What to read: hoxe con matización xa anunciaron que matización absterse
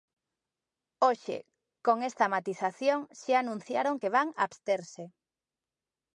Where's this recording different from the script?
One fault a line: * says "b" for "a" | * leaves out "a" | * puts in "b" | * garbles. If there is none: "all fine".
* puts in "esta"
* says "van" for "matización"